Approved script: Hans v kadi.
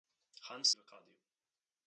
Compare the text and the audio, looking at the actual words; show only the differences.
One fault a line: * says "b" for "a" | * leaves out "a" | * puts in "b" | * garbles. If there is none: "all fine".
all fine